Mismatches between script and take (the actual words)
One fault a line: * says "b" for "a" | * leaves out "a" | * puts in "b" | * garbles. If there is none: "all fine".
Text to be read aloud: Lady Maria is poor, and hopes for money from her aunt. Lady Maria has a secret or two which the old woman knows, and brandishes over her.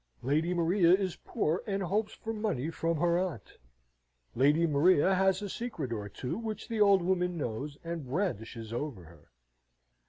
all fine